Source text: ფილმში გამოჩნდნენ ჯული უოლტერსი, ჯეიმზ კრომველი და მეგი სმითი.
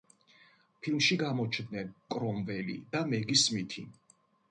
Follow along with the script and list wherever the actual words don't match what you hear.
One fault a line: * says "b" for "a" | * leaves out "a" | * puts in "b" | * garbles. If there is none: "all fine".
* leaves out "ჯული უოლტერსი ჯეიმზ"